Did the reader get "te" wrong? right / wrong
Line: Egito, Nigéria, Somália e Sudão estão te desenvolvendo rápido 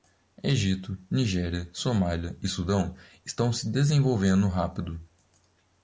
wrong